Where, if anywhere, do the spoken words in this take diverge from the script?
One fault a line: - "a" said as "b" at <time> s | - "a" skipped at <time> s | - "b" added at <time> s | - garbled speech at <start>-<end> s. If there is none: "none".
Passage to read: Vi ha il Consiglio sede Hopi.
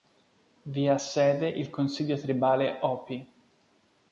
- "sede" added at 0.9 s
- "sede" said as "tribale" at 2.2 s